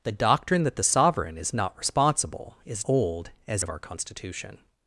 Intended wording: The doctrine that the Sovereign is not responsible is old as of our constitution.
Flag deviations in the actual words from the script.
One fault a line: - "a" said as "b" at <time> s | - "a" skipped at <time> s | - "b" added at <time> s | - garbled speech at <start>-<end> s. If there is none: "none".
none